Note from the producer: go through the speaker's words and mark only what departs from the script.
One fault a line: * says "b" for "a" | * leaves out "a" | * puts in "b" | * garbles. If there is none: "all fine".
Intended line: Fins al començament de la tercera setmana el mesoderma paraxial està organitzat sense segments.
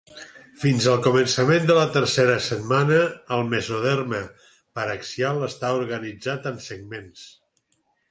* says "en" for "sense"